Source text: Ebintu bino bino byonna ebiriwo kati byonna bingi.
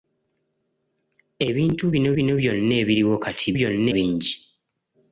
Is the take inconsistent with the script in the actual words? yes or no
no